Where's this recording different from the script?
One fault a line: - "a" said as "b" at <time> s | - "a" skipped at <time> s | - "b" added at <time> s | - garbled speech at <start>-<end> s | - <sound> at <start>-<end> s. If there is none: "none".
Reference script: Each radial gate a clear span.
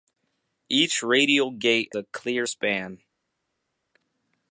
none